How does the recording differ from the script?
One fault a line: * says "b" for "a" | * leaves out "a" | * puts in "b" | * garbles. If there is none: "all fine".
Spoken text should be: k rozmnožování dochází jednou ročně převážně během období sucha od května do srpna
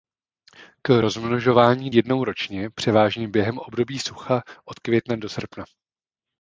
* leaves out "dochází"